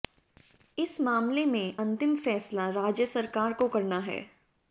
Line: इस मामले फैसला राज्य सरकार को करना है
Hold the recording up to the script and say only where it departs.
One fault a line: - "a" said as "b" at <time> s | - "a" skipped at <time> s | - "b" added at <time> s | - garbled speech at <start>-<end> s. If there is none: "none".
- "में अंतिम" added at 1.4 s